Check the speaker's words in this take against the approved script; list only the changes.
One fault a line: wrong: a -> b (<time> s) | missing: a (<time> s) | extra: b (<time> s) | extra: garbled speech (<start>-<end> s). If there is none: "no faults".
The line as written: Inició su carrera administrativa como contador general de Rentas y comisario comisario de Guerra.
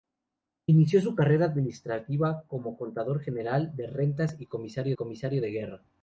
no faults